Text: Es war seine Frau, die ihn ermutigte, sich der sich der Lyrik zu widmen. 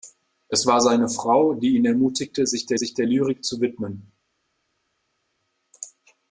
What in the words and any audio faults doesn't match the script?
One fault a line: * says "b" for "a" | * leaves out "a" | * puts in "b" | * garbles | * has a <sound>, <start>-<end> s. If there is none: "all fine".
all fine